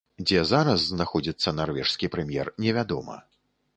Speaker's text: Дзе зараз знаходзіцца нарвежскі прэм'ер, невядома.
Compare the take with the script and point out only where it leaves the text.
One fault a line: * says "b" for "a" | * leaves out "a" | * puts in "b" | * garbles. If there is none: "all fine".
all fine